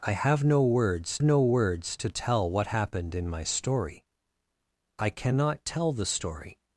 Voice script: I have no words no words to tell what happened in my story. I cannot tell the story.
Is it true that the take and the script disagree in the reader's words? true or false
false